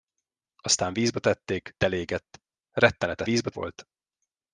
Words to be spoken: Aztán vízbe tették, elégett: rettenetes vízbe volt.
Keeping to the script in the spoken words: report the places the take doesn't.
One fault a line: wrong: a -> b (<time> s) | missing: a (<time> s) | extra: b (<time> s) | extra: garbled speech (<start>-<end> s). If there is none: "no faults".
no faults